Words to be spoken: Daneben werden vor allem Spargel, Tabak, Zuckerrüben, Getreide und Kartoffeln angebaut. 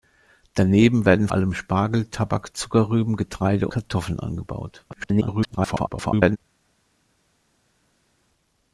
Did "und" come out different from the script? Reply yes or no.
yes